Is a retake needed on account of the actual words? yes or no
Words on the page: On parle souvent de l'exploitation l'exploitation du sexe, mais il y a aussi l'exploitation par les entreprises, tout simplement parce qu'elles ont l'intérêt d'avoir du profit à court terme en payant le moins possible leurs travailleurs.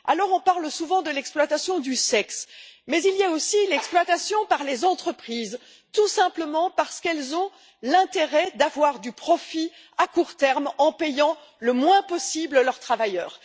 yes